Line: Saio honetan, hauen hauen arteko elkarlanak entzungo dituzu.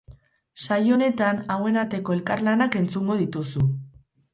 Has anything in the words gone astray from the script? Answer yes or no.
yes